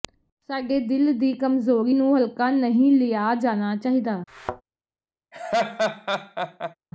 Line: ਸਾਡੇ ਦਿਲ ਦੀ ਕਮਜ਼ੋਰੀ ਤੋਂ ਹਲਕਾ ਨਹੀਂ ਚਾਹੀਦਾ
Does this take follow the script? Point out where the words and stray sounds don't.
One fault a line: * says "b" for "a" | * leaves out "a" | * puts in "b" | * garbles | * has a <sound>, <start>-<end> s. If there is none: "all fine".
* says "ਨੂੰ" for "ਤੋਂ"
* puts in "ਲਿਆ ਜਾਣਾ"
* has a thud, 4.3-4.6 s
* has a laugh, 5.3-6.8 s